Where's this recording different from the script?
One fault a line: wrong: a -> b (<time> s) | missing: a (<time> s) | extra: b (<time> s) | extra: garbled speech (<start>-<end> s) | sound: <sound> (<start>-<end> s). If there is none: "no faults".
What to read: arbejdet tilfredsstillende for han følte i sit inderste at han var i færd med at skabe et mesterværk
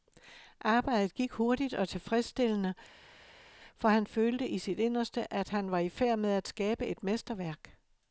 extra: gik hurtigt og (1.1 s)